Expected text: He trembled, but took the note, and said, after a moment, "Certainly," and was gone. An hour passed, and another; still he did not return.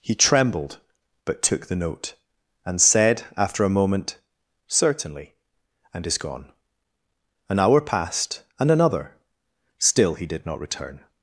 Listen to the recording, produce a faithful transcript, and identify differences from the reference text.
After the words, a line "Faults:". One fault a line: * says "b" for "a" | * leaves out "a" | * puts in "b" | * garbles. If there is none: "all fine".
He trembled, but took the note, and said, after a moment, "Certainly," and is gone. An hour passed, and another; still he did not return.
Faults:
* says "is" for "was"